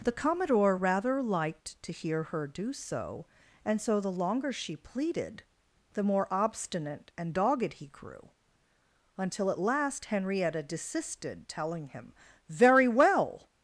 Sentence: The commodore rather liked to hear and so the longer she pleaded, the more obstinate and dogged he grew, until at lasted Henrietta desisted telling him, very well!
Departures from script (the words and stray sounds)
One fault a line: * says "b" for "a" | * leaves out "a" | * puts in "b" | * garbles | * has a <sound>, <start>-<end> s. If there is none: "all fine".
* puts in "her do so"
* says "last" for "lasted"